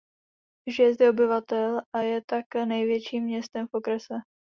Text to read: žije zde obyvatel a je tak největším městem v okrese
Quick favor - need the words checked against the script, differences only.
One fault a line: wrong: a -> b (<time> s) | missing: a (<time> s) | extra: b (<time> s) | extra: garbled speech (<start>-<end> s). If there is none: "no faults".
no faults